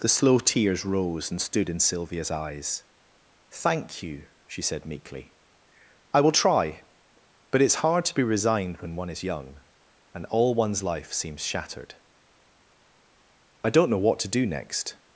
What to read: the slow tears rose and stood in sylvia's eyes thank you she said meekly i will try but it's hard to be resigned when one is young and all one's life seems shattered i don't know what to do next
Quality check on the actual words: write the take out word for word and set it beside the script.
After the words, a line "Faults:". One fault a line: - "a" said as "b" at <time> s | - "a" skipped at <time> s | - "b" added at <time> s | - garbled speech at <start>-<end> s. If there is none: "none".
the slow tears rose and stood in sylvia's eyes thank you she said meekly i will try but it's hard to be resigned when one is young and all one's life seems shattered i don't know what to do next
Faults:
none